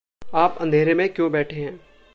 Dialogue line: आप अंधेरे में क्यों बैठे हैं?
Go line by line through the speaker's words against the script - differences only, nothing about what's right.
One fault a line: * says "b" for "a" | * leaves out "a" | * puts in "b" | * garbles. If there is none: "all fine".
all fine